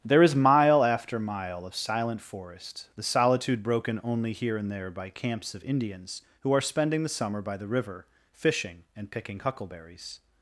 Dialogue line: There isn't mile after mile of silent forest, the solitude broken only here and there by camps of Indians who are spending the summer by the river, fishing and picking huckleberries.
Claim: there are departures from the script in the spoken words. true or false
true